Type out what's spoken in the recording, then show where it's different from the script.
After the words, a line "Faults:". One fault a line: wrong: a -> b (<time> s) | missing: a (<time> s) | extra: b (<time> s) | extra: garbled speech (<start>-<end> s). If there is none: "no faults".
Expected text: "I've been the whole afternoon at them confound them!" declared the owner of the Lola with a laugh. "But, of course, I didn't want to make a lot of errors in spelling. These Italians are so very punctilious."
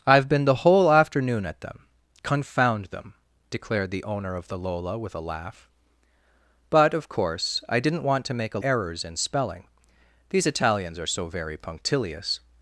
"I've been the whole afternoon at them confound them!" declared the owner of the Lola with a laugh. "But, of course, I didn't want to make a errors in spelling. These Italians are so very punctilious."
Faults:
missing: lot of (8.6 s)